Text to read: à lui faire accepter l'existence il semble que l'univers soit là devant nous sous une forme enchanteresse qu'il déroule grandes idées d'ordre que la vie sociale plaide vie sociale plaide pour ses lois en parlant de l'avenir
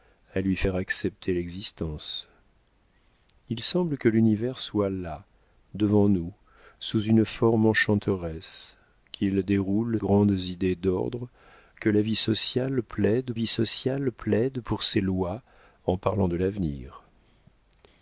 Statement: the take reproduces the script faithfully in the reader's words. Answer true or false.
true